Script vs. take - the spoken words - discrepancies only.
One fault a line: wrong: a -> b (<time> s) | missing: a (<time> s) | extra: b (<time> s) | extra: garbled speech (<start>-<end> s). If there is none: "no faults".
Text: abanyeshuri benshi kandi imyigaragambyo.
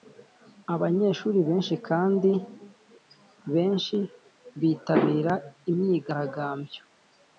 extra: benshi bitabira (3.5 s)